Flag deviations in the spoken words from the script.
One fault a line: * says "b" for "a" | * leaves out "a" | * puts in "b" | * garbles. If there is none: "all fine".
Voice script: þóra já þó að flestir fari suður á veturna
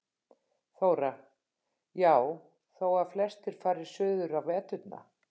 all fine